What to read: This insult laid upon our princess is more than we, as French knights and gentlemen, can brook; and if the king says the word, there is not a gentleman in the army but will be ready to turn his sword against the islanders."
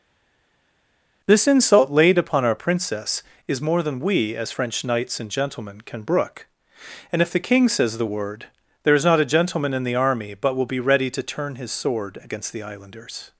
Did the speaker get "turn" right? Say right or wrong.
right